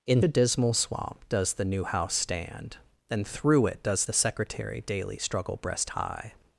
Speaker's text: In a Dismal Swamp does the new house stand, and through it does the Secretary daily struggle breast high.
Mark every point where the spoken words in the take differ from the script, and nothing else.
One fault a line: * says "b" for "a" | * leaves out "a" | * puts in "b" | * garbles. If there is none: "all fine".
all fine